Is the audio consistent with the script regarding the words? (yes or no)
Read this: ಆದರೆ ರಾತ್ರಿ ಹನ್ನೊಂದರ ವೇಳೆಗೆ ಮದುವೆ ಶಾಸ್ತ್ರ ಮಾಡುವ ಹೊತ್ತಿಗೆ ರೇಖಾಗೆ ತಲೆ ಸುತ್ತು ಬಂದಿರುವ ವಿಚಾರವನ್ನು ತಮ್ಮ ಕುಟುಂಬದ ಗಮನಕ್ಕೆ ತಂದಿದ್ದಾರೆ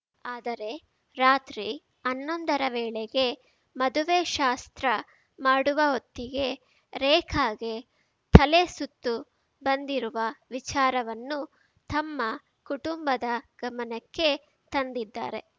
yes